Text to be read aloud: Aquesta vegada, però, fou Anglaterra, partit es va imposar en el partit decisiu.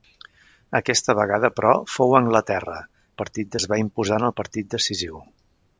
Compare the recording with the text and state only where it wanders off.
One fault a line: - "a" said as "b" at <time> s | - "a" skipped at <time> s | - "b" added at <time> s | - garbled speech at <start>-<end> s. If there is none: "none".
none